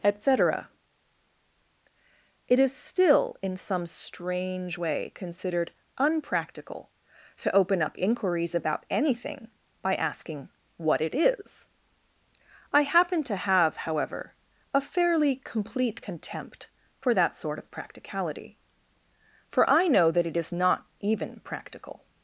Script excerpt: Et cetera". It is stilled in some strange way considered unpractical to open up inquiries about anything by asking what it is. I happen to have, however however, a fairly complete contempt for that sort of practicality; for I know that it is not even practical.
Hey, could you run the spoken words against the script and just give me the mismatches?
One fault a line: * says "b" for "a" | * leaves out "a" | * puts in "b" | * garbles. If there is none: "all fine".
* says "still" for "stilled"
* leaves out "however"